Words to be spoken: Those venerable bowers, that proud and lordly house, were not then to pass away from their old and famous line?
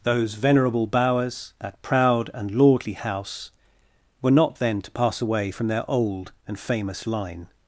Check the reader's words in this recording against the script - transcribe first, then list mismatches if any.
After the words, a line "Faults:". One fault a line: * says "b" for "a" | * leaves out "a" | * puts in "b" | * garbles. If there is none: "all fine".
Those venerable bowers, that proud and lordly house, were not then to pass away from their old and famous line?
Faults:
all fine